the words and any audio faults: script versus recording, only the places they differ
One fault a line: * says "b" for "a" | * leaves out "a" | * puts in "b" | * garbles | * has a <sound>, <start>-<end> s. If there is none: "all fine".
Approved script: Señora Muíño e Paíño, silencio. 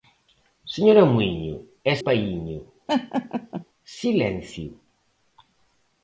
* has a laugh, 2.9-3.6 s